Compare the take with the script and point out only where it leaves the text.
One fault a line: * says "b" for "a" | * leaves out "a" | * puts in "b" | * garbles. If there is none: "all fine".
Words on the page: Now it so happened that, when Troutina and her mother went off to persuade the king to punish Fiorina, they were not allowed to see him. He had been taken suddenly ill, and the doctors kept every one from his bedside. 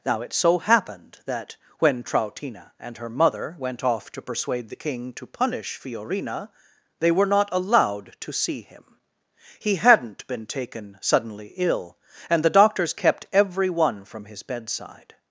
* says "hadn't" for "had"